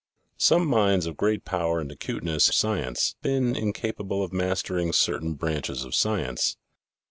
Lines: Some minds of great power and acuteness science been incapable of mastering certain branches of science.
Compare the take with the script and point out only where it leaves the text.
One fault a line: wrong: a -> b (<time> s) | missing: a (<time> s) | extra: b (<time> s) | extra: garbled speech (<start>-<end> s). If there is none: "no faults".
no faults